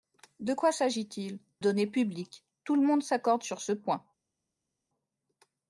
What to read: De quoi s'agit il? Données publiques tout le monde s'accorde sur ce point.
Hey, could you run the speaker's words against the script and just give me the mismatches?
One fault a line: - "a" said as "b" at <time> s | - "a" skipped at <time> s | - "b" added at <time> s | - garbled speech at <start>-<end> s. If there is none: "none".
none